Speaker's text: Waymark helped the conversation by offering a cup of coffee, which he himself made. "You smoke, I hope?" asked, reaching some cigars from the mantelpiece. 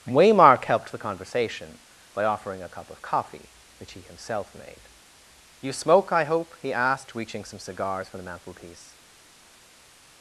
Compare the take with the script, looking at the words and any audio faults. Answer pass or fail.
fail